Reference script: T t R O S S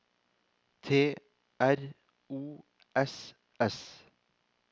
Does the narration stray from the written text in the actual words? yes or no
yes